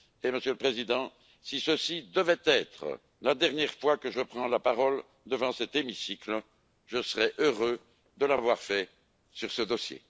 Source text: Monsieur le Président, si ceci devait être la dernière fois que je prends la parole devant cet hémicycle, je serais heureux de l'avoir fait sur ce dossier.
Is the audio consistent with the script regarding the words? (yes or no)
yes